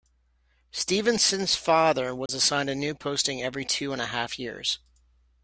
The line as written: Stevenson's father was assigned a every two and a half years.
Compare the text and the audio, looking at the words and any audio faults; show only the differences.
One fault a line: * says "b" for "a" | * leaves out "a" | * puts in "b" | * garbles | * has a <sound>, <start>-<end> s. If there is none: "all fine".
* has a dropout, 2.3-2.3 s
* puts in "new posting"